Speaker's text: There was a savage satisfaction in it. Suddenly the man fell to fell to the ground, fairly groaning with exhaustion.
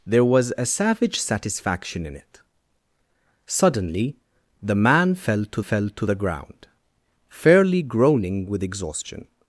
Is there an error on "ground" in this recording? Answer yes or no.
no